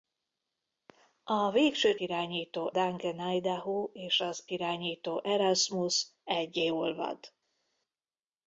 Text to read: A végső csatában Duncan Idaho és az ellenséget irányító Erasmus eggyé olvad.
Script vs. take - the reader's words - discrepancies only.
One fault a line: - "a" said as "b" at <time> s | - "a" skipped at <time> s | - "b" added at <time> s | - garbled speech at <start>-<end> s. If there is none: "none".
- "csatában" said as "irányító" at 2.0 s
- "ellenséget" skipped at 4.4 s